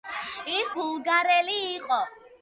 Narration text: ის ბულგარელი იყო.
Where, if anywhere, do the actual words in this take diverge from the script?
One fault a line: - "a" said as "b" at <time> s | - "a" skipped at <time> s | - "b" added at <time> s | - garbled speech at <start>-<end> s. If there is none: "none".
none